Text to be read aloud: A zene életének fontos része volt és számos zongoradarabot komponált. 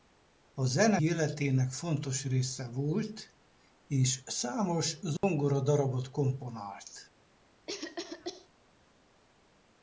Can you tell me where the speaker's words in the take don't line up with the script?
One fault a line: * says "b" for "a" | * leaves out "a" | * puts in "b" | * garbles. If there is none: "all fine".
all fine